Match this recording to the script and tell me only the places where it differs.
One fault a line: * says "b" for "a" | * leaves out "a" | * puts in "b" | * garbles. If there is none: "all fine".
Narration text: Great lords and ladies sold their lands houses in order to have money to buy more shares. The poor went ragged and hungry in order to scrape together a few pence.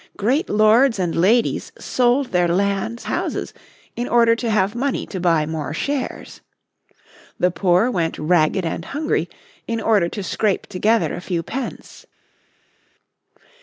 all fine